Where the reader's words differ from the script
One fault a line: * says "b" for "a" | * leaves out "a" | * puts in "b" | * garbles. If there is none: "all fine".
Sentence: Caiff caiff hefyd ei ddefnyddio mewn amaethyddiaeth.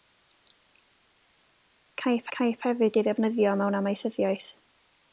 all fine